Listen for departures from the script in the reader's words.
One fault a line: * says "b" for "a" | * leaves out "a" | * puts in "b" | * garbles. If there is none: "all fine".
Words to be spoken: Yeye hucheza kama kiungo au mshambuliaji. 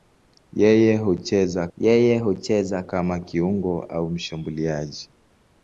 * puts in "yeye hucheza"